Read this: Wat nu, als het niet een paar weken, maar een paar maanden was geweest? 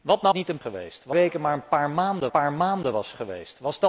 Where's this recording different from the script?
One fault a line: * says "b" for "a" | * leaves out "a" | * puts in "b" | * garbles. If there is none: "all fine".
* leaves out "als het"
* says "geweest" for "paar"
* puts in "paar maanden"